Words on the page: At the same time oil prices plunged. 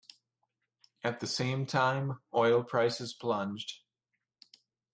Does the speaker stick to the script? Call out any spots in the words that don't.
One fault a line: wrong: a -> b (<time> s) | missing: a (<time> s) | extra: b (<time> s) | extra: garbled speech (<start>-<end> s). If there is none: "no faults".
no faults